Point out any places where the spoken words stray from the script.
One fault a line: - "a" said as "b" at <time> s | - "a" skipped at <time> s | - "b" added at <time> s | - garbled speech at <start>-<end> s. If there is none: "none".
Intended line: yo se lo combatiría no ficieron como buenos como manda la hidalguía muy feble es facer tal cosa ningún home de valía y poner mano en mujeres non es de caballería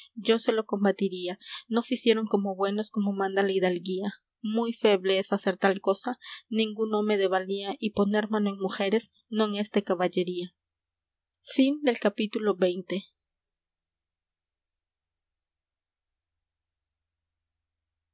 none